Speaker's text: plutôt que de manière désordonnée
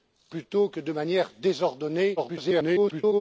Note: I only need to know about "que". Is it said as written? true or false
true